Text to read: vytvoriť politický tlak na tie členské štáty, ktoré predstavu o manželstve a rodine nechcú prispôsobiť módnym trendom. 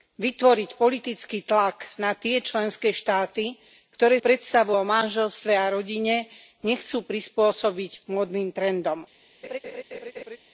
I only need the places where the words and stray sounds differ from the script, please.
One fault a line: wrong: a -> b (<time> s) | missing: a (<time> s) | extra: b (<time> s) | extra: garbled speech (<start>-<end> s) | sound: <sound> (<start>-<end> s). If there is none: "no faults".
sound: laugh (9.4-10.4 s)